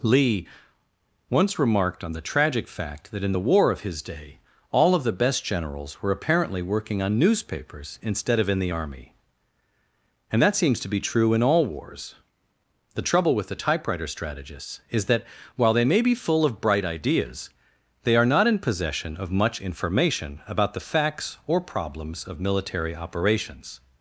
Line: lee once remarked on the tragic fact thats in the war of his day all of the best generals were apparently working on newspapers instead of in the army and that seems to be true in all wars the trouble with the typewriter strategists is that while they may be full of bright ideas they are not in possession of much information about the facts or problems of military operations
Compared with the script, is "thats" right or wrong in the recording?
wrong